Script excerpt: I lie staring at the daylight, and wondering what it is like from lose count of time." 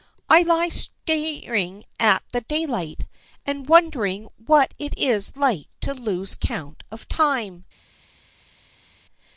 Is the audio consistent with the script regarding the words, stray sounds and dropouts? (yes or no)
no